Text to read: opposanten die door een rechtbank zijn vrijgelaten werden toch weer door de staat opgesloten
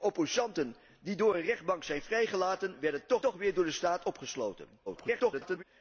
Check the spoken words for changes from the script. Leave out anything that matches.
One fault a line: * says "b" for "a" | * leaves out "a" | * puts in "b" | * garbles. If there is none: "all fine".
* puts in "toch"
* garbles